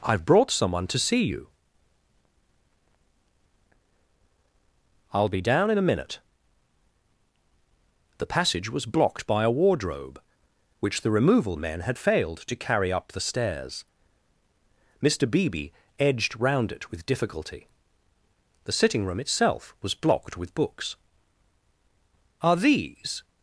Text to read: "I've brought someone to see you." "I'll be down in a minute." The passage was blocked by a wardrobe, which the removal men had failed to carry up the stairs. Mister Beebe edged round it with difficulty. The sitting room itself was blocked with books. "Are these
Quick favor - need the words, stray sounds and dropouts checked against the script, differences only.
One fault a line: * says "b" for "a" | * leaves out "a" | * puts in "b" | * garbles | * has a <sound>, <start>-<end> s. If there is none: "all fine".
all fine